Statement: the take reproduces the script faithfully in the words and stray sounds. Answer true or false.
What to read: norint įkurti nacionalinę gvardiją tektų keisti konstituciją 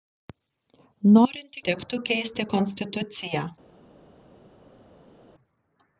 false